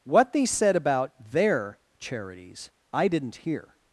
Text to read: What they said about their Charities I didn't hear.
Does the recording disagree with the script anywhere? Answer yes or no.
no